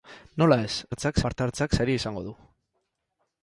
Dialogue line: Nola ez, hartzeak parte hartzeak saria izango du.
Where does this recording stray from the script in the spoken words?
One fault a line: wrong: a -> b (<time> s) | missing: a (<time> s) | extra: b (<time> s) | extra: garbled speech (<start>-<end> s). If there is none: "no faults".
no faults